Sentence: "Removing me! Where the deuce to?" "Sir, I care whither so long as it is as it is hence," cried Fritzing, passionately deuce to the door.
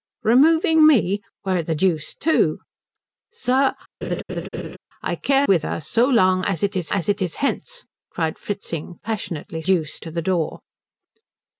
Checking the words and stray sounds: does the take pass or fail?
fail